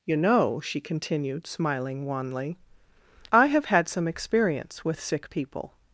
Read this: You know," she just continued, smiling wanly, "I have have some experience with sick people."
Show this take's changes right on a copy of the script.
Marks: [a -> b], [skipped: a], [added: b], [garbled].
You know," she [skipped: just] continued, smiling wanly, "I have [have -> had] some experience with sick people."